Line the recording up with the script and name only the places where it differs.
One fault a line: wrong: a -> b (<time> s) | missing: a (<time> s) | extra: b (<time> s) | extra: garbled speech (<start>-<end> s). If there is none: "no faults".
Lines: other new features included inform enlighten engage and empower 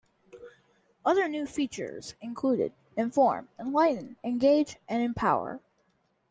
no faults